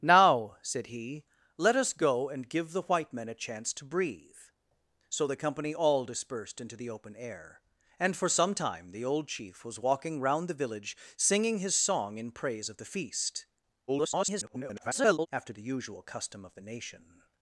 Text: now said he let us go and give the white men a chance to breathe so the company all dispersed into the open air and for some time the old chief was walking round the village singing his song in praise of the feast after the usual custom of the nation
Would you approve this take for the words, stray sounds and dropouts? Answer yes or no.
no